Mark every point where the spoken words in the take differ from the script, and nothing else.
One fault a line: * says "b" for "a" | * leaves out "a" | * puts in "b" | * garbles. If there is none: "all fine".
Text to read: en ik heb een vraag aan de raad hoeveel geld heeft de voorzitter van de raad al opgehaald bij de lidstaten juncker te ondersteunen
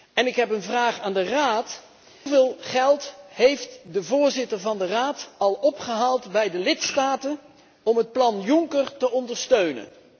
* puts in "om het plan"